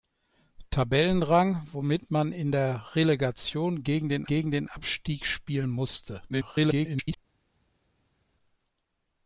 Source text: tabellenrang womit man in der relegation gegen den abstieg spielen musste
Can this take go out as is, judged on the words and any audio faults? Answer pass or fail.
fail